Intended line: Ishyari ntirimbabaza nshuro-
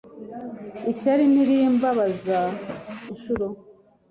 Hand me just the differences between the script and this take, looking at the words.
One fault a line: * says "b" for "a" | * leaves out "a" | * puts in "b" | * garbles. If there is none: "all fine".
all fine